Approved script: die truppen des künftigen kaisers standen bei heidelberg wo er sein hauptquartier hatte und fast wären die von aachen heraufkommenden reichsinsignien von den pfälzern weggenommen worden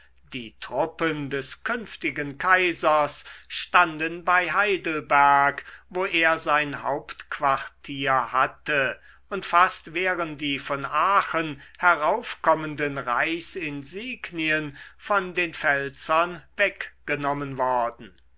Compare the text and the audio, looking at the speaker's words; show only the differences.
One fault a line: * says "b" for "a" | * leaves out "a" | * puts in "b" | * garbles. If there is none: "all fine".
all fine